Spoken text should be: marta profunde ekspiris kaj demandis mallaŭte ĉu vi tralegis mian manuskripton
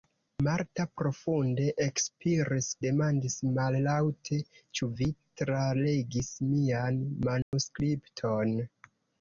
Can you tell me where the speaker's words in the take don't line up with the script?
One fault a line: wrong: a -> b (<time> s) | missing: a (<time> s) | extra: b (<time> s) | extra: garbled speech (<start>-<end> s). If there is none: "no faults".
missing: kaj (2.7 s)